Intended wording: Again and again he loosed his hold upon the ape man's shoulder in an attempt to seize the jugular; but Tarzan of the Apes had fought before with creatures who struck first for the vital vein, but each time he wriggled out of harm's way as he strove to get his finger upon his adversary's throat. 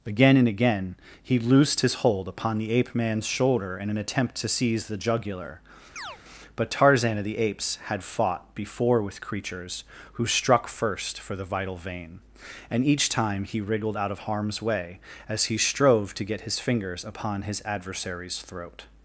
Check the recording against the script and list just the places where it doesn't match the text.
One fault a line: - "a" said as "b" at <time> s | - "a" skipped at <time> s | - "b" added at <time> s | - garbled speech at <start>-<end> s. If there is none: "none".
- "but" said as "and" at 12.7 s
- "finger" said as "fingers" at 16.6 s